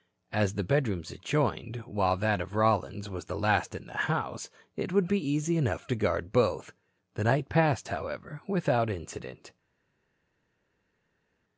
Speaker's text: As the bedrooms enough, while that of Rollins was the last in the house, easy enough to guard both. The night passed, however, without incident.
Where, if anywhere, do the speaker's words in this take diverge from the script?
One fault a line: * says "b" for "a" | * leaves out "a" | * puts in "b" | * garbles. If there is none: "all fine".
* says "adjoined" for "enough"
* puts in "it would be"